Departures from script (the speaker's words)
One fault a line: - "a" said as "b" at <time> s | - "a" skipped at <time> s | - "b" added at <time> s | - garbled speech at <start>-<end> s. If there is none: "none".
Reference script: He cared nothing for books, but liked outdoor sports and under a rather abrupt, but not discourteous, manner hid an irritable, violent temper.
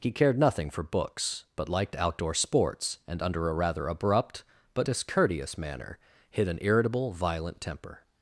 - "not" skipped at 4.9 s